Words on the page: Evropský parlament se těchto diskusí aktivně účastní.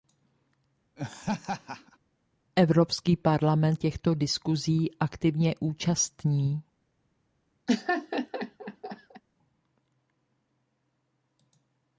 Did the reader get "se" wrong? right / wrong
wrong